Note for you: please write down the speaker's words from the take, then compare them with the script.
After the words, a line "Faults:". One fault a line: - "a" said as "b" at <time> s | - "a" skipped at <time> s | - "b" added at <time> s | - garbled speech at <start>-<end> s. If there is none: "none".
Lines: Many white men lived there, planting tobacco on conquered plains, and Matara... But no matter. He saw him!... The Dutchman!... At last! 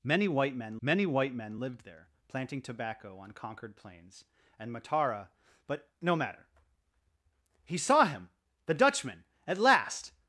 Many white men many white men lived there, planting tobacco on conquered plains, and Matara... But no matter. He saw him!... The Dutchman!... At last!
Faults:
- "many white men" added at 0.8 s